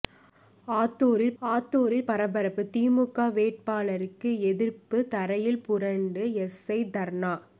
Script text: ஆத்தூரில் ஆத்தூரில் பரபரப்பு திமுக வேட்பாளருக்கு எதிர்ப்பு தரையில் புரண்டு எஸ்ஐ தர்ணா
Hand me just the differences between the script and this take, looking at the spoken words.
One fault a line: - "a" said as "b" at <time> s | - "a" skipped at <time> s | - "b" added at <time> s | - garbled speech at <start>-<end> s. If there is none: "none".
none